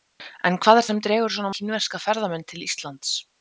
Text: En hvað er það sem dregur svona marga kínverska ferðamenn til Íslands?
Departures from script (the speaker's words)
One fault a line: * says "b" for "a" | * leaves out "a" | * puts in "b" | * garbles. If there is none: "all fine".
* leaves out "það"
* leaves out "marga"